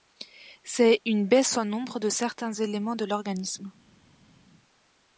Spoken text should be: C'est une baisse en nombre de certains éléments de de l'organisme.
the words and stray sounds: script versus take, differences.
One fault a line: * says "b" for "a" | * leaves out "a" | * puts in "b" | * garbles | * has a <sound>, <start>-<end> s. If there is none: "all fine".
* leaves out "de"